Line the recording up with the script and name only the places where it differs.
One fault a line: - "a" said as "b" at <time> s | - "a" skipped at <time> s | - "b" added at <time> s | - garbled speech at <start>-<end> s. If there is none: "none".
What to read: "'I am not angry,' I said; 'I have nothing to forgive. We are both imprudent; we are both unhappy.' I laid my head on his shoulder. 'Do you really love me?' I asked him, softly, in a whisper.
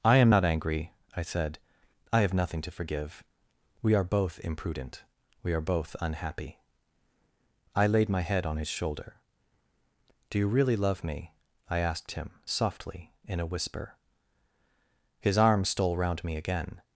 - "His arm stole round me again" added at 15.2 s